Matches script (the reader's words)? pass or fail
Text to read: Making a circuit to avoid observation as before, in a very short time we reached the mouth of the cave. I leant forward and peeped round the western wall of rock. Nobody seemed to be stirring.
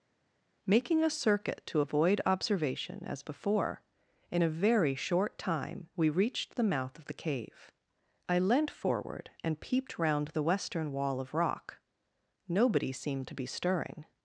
pass